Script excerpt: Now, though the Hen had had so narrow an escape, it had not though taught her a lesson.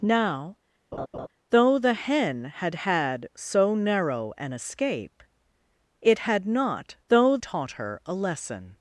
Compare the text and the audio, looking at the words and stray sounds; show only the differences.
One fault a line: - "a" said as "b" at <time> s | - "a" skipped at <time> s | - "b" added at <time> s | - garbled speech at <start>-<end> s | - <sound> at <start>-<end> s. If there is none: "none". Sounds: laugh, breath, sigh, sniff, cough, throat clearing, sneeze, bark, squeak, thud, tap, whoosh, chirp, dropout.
- laugh at 0.9-1.3 s